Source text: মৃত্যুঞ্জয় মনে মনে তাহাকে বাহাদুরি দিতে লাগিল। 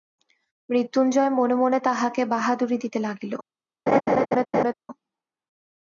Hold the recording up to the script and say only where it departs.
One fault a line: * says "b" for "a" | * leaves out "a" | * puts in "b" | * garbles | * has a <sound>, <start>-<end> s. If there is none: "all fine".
* has a laugh, 3.9-4.7 s